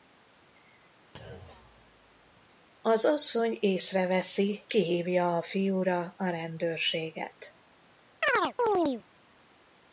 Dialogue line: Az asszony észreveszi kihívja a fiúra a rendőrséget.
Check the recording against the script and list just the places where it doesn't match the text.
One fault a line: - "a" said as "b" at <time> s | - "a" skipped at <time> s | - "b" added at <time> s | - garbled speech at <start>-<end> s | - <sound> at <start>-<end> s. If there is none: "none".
- thud at 1.1-2.5 s
- chirp at 8.2-9.0 s